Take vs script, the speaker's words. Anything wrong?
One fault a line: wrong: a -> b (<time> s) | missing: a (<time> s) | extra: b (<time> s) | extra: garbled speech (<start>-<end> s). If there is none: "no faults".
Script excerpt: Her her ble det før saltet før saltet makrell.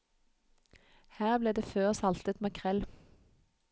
missing: her (1.4 s)
missing: før saltet (2.4 s)